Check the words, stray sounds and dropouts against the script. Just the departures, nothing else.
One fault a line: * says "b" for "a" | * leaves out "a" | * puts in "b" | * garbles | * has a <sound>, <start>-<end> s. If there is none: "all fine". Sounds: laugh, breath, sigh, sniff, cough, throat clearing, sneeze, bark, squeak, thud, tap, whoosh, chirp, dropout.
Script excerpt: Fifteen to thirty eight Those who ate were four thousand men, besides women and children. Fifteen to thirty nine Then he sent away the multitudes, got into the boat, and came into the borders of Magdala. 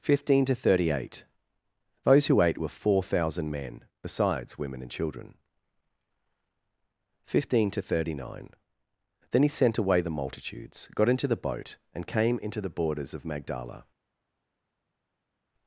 all fine